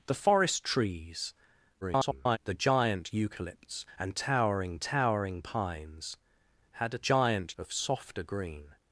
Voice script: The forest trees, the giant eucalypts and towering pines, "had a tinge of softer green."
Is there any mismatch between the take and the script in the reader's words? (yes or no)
yes